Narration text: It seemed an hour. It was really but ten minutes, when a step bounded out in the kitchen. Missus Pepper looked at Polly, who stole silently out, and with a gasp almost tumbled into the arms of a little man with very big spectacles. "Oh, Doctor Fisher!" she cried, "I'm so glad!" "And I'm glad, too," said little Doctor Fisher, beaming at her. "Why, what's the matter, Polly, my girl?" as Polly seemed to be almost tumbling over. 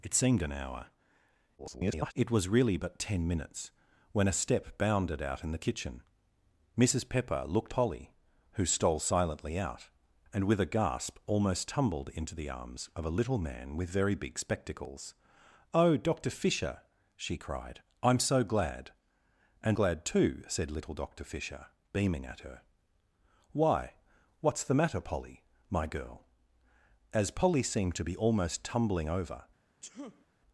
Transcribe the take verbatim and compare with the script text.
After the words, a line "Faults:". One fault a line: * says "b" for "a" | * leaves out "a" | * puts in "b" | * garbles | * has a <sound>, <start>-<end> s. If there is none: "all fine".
It seemed an hour. [garbled] It was really but ten minutes, when a step bounded out in the kitchen. Missus Pepper looked Polly, who stole silently out, and with a gasp almost tumbled into the arms of a little man with very big spectacles. "Oh, Doctor Fisher!" she cried, "I'm so glad!" "And Glad, too," said little Doctor Fisher, beaming at her. "Why, what's the matter, Polly, my girl?" as Polly seemed to be almost tumbling over.
Faults:
* garbles
* leaves out "at"
* leaves out "I'm"
* has a sneeze, 29.8-30.3 s